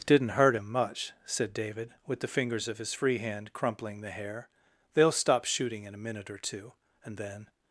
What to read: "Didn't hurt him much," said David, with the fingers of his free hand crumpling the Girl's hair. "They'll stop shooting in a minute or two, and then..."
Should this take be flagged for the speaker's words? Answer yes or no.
yes